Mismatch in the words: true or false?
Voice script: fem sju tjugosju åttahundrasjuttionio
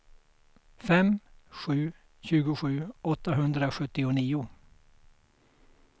false